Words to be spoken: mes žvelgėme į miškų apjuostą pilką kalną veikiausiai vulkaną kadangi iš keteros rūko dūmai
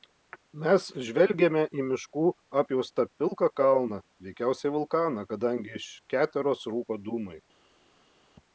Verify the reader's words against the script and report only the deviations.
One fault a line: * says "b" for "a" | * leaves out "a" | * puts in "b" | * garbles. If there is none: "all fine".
all fine